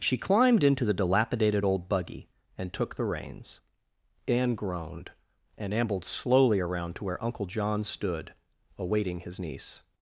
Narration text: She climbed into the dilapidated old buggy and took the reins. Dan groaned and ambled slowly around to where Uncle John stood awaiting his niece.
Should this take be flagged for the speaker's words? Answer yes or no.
yes